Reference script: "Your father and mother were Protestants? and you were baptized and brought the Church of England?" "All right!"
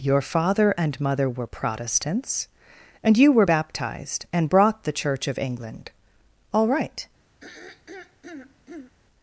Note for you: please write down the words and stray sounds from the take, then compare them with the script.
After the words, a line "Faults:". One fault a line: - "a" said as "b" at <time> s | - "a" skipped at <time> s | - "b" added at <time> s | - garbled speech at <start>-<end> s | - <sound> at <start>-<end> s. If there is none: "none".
"Your father and mother were Protestants? and you were baptized and brought the Church of England?" "All right!"
Faults:
- throat clearing at 7.4-8.9 s